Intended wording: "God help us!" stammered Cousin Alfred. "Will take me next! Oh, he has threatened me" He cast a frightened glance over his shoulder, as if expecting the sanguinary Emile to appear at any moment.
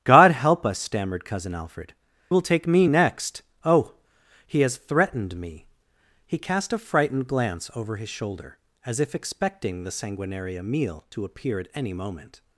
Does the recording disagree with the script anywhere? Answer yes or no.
no